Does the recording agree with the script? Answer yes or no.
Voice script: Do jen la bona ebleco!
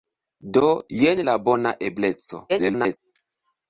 no